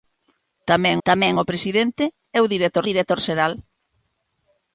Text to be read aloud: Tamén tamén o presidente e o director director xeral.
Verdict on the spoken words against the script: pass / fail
pass